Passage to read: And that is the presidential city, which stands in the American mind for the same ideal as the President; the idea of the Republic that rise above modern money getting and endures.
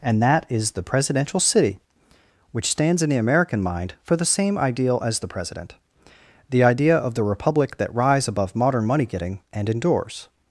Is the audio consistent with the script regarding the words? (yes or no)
yes